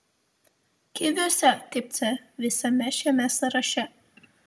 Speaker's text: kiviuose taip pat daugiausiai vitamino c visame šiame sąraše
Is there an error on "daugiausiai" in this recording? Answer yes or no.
yes